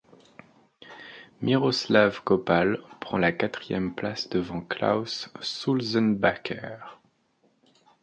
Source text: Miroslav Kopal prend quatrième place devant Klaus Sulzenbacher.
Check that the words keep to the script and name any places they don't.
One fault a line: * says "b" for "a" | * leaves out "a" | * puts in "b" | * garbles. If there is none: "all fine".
* puts in "la"